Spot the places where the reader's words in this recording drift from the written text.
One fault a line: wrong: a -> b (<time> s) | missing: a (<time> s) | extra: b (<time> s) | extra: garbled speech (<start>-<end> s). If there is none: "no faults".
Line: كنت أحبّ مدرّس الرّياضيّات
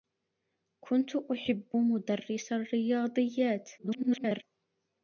extra: garbled speech (3.8-4.4 s)